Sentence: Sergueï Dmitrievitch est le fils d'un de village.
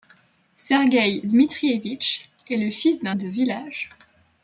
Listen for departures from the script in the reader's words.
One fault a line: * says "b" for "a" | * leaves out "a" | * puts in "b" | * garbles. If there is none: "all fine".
all fine